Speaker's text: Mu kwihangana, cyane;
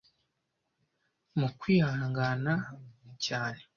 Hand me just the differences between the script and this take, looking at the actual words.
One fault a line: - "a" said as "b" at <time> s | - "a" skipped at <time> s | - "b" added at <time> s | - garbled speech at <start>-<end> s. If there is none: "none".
none